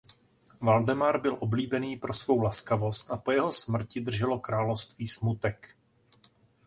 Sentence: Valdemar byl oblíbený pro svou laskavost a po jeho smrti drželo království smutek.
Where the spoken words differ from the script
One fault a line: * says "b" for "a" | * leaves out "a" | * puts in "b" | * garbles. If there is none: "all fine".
all fine